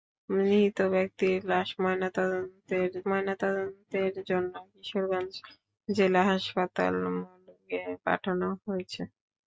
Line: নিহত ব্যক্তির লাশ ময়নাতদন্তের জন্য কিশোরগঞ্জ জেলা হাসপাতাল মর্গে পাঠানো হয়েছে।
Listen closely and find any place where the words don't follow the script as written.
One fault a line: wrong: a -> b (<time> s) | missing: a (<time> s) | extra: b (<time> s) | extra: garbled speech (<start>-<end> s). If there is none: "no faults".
extra: ময়নাতদন্তের (3.1 s)